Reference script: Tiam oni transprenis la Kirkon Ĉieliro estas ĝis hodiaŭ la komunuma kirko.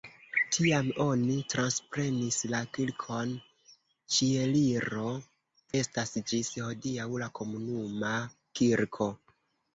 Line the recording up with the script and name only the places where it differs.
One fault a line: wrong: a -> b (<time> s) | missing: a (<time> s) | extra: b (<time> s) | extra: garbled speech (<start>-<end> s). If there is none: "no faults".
no faults